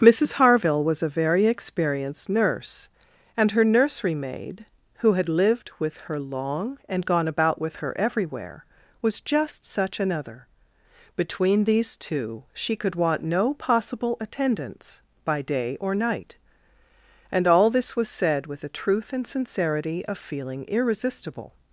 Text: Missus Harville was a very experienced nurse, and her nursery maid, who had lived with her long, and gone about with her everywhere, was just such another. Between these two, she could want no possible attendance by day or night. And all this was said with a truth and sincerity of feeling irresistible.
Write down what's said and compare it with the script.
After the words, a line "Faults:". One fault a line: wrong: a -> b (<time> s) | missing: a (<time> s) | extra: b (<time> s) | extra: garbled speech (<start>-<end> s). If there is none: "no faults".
Missus Harville was a very experienced nurse, and her nursery maid, who had lived with her long, and gone about with her everywhere, was just such another. Between these two, she could want no possible attendance by day or night. And all this was said with a truth and sincerity of feeling irresistible.
Faults:
no faults